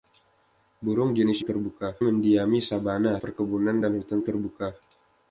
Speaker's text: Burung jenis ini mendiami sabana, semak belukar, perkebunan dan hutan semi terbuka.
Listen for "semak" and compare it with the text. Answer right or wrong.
wrong